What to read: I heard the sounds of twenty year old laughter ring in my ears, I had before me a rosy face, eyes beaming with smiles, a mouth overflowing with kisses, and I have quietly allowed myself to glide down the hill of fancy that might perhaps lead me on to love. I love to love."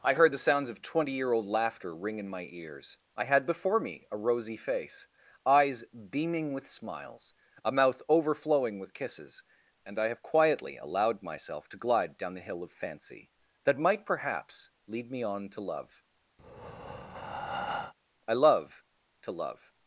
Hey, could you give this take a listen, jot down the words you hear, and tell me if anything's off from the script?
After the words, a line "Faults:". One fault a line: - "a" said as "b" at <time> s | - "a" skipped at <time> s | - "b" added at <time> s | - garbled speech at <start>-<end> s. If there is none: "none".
I heard the sounds of twenty year old laughter ring in my ears, I had before me a rosy face, eyes beaming with smiles, a mouth overflowing with kisses, and I have quietly allowed myself to glide down the hill of fancy that might perhaps lead me on to love. I love to love."
Faults:
none